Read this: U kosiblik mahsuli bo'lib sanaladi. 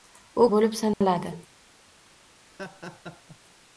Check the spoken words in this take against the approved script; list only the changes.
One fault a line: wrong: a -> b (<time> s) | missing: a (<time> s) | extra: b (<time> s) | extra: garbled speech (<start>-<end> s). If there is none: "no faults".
missing: kosiblik mahsuli (0.5 s)